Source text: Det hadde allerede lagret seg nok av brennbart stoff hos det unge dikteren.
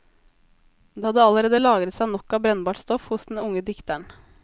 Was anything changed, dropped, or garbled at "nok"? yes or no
no